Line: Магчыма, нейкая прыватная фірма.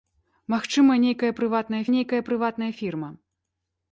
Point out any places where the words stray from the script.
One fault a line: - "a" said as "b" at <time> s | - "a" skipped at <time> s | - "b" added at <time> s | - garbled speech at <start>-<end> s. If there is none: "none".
- "нейкая прыватная" added at 1.9 s